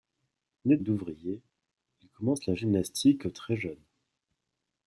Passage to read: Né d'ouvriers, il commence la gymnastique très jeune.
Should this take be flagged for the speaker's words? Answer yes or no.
no